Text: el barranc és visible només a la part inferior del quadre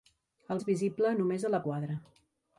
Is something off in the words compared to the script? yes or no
yes